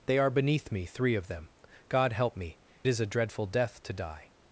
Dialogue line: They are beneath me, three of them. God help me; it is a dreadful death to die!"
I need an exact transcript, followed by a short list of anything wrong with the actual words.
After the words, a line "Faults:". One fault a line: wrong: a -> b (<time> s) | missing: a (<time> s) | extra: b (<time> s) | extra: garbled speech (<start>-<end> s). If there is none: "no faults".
They are beneath me, three of them. God help me; is a dreadful death to die!"
Faults:
missing: it (2.6 s)